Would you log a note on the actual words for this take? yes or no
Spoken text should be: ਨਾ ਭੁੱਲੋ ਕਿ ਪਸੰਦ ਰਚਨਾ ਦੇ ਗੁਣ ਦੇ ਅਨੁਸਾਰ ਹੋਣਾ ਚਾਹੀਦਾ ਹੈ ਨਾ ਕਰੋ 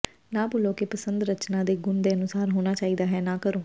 no